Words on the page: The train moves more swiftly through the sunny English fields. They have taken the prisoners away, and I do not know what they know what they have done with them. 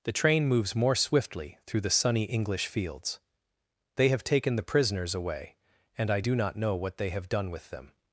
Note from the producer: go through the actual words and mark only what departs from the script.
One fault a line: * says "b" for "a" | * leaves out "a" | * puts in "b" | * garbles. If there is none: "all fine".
* leaves out "know what they"